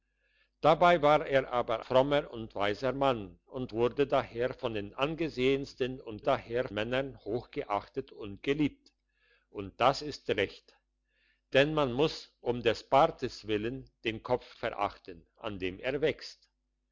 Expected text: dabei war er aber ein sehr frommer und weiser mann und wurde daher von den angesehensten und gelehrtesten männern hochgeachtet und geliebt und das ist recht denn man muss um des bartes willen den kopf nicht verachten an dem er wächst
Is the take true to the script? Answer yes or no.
no